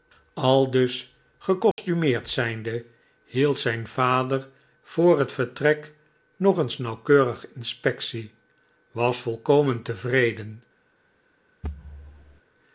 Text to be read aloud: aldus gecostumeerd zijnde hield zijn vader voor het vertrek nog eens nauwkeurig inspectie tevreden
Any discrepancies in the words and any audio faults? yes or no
yes